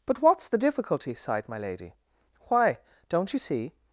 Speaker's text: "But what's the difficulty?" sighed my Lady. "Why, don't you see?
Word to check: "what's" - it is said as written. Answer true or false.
true